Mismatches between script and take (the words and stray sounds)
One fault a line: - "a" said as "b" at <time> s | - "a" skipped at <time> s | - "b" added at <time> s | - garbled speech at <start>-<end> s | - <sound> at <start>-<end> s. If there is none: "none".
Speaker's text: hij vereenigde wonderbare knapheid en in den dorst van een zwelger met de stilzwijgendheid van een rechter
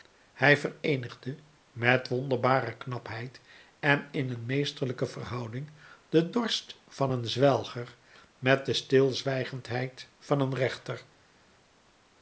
- "met" added at 1.7 s
- "een meesterlijke verhouding" added at 4.3 s